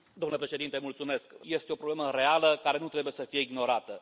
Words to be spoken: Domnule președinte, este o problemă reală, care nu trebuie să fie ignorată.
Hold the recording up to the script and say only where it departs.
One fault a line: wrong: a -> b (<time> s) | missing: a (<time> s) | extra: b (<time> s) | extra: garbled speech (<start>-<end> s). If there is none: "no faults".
no faults